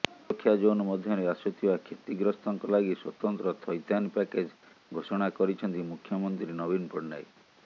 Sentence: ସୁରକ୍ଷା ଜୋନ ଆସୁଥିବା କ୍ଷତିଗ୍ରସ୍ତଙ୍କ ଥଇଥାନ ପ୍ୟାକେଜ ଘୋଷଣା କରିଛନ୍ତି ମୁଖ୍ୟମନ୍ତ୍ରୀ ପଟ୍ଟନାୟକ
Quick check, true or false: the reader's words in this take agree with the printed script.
false